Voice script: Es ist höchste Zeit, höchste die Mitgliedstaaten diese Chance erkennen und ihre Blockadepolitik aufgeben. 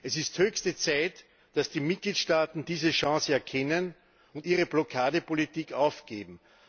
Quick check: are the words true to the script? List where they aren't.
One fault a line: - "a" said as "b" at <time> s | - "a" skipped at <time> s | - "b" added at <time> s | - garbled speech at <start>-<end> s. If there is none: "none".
- "höchste" said as "dass" at 1.5 s